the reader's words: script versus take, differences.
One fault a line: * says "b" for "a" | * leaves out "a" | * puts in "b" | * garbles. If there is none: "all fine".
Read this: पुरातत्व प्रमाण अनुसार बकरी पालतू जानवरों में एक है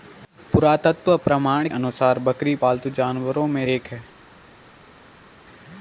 all fine